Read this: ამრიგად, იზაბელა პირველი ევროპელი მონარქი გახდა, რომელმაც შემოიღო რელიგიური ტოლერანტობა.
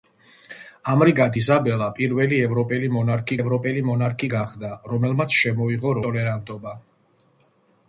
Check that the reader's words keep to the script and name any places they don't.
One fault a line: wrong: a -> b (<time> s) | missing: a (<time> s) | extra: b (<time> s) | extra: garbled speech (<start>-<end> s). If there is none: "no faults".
extra: ევროპელი მონარქი (3.4 s)
missing: რელიგიური (6.0 s)